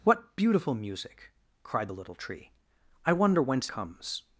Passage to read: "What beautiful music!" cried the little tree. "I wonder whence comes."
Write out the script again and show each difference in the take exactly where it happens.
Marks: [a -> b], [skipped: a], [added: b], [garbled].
"What beautiful music!" cried the little tree. "I wonder whence comes."